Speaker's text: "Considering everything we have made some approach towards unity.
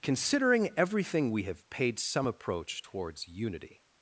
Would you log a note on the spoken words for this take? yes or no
yes